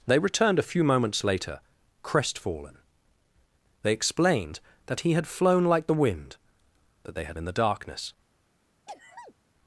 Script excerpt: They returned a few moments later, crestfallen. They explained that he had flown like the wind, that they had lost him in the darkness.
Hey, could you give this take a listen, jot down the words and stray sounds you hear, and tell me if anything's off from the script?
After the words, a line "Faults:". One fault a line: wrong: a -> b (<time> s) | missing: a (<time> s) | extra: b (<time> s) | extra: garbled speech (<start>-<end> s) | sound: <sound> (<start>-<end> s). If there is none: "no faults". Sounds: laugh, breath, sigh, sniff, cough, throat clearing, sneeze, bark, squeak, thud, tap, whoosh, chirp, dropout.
They returned a few moments later, crestfallen. They explained that he had flown like the wind, that they had in the darkness.
Faults:
missing: lost him (7.4 s)
sound: sneeze (8.9-9.3 s)